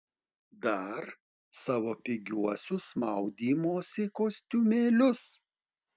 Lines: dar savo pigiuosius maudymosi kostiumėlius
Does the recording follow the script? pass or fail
pass